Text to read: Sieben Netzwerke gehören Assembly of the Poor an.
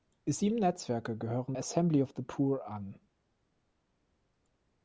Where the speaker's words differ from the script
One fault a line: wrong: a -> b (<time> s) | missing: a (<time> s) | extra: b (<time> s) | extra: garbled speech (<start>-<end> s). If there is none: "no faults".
no faults